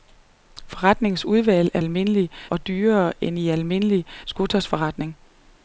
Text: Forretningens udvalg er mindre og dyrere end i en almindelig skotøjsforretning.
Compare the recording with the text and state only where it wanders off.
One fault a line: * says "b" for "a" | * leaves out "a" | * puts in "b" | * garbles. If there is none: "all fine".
* says "almindelig" for "mindre"